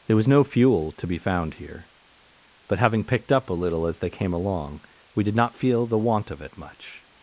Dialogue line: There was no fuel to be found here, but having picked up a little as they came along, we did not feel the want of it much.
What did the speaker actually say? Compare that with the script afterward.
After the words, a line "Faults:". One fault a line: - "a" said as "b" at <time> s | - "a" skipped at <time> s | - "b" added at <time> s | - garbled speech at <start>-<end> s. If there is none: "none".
There was no fuel to be found here, but having picked up a little as they came along, we did not feel the want of it much.
Faults:
none